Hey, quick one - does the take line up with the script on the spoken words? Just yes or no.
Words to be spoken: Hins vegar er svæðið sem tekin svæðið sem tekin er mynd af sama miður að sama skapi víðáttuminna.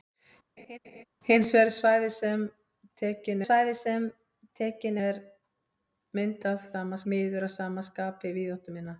yes